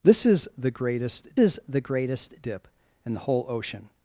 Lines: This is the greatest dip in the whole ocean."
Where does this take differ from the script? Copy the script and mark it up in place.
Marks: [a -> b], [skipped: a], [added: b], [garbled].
This is the greatest [added: is the greatest] dip in the whole ocean."